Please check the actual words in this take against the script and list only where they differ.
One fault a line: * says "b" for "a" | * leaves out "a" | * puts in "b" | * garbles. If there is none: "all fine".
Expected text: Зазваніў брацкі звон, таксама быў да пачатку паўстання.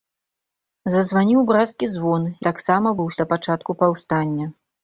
all fine